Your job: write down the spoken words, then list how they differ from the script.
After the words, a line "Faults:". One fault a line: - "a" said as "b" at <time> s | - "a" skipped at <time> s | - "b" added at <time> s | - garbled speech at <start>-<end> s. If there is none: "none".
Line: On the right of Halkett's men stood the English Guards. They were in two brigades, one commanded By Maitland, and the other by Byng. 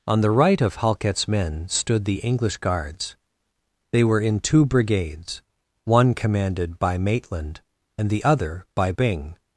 On the right of Halkett's men stood the English Guards. They were in two brigades, one commanded By Maitland, and the other by Byng.
Faults:
none